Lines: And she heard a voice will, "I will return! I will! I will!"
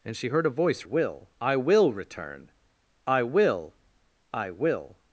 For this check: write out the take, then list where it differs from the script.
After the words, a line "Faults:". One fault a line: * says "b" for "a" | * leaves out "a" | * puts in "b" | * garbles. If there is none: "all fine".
And she heard a voice will, "I will return! I will! I will!"
Faults:
all fine